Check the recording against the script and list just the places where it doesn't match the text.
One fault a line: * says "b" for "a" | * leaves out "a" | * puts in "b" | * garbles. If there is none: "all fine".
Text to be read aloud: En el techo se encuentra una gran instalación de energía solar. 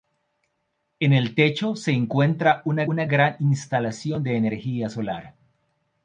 * puts in "una"